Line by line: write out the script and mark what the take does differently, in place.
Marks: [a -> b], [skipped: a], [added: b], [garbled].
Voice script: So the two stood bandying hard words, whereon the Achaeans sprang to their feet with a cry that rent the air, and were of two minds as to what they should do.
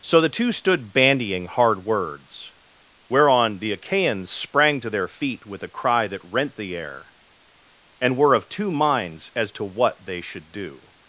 So the two stood bandying hard words, whereon the Achaeans sprang to their feet with a cry that rent the air, and were of two minds as to what they should do.